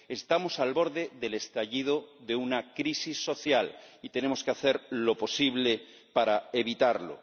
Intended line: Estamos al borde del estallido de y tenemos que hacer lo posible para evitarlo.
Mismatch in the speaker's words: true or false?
true